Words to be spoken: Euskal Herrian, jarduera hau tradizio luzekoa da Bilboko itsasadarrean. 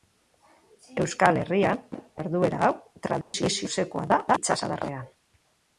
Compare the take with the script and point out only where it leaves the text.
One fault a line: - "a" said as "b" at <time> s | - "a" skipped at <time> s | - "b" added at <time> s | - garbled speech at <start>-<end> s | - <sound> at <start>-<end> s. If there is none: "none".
- dropout at 3.2-3.3 s
- "Bilboko" skipped at 4.2 s